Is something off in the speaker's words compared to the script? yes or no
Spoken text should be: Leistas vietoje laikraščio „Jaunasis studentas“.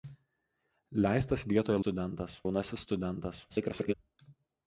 yes